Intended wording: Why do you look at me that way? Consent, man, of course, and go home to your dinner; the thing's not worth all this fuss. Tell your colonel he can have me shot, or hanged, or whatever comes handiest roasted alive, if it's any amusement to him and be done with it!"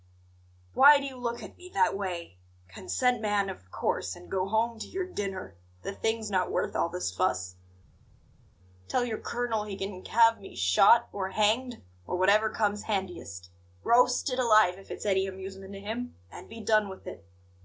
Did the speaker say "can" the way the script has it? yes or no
yes